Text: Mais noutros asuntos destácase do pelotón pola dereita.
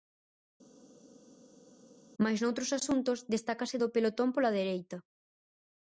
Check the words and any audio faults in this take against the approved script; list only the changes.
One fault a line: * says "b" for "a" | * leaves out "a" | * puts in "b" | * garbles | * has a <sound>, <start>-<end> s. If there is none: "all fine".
all fine